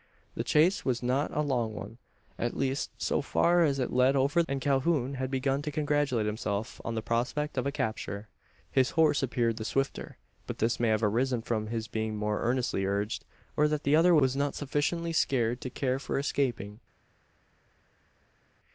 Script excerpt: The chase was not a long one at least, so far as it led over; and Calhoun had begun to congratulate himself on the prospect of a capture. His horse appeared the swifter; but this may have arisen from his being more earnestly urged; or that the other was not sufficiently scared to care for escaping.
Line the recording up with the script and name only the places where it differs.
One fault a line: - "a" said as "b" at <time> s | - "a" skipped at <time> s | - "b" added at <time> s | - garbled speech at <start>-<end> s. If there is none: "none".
none